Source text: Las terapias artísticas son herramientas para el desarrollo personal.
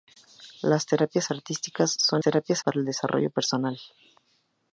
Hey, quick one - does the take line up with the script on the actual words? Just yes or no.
no